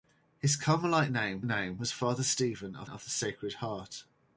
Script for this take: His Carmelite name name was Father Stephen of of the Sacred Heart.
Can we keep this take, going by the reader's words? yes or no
yes